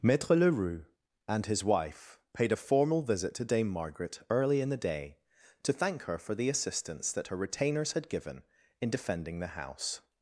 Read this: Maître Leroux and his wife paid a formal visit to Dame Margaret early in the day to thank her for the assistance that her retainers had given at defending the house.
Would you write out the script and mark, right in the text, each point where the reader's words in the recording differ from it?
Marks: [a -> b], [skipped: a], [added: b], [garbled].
Maître Leroux and his wife paid a formal visit to Dame Margaret early in the day to thank her for the assistance that her retainers had given [at -> in] defending the house.